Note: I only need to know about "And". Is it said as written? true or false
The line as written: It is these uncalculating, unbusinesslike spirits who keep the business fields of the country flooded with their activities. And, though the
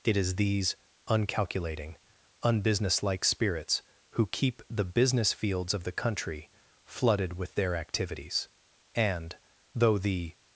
true